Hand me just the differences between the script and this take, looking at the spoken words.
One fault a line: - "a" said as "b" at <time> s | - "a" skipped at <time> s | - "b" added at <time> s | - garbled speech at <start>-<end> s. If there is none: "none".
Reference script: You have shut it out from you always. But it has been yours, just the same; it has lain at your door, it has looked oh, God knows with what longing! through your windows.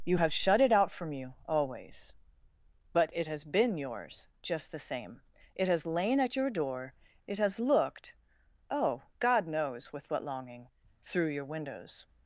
none